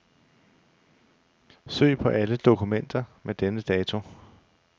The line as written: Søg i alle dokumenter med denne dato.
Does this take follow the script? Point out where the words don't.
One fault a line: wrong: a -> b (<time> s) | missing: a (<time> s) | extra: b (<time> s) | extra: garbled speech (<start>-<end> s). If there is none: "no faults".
wrong: i -> på (2.0 s)